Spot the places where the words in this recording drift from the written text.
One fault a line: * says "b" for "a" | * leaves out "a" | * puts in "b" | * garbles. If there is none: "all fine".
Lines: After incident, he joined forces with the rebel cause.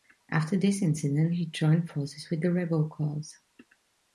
* puts in "this"